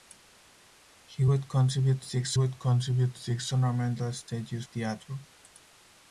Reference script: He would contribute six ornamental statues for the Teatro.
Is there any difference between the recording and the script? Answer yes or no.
yes